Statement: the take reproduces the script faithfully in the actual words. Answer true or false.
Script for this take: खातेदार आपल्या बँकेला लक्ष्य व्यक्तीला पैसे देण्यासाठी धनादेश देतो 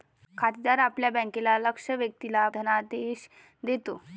false